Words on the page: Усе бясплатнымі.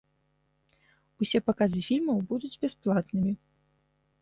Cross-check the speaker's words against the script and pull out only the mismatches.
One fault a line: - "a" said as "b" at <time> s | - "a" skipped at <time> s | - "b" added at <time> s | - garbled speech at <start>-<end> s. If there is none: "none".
- "паказы фільмаў будуць" added at 1.5 s